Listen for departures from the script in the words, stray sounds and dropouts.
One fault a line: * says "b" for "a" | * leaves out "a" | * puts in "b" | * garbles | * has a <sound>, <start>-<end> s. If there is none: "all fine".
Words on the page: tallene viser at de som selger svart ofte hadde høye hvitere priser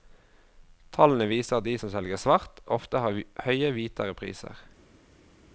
* says "har" for "hadde"